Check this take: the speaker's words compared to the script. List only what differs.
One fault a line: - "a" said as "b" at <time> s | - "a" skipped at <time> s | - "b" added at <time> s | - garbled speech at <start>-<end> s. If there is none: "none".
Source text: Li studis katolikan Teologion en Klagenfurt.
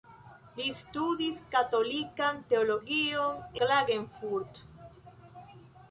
- "en" skipped at 3.4 s